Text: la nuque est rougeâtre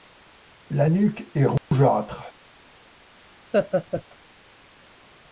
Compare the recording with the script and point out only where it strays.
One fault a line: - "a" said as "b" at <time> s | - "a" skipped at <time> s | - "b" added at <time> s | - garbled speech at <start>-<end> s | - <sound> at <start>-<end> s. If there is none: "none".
- dropout at 1.6-1.7 s
- laugh at 3.5-4.0 s